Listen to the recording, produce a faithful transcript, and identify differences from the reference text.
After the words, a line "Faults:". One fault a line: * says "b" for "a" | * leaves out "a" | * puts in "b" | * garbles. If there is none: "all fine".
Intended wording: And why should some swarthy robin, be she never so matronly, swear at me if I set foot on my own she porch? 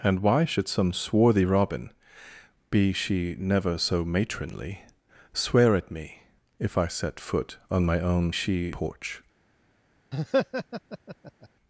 And why should some swarthy robin, be she never so matronly, swear at me if I set foot on my own she porch?
Faults:
all fine